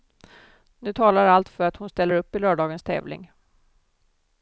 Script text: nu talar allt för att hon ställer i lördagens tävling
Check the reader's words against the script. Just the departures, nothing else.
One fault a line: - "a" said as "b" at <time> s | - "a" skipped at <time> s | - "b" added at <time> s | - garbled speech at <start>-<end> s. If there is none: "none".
- "upp" added at 2.1 s